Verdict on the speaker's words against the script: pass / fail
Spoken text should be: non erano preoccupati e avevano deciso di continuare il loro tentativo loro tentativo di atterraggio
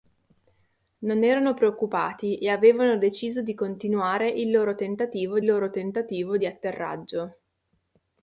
pass